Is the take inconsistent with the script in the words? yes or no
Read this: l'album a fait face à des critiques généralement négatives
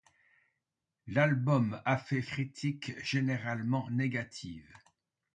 yes